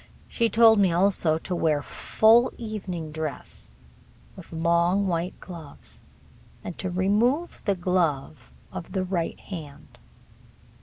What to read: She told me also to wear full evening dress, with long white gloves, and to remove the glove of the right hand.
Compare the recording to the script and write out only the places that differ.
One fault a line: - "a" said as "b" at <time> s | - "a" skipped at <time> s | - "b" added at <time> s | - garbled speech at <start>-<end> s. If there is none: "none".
none